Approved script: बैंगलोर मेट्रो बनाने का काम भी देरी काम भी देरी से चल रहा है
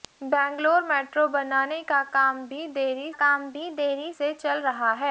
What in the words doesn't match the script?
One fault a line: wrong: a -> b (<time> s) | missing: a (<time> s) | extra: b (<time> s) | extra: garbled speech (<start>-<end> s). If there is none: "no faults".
no faults